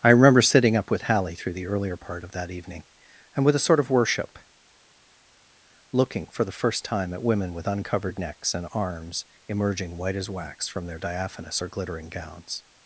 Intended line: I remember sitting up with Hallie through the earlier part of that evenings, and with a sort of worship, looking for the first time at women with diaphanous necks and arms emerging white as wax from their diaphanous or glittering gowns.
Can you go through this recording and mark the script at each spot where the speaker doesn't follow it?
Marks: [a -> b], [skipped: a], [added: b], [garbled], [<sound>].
I remember sitting up with Hallie through the earlier part of that [evenings, -> evening] and with a sort of worship, looking for the first time at women with [diaphanous -> uncovered] necks and arms emerging white as wax from their diaphanous or glittering gowns.